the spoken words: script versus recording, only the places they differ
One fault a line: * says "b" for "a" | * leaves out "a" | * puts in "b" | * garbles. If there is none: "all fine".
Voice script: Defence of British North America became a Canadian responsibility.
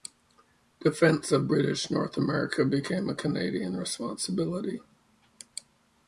all fine